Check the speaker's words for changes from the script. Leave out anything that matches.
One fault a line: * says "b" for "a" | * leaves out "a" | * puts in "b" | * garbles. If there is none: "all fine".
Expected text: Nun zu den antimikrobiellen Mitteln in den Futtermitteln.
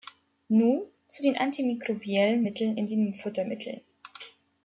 all fine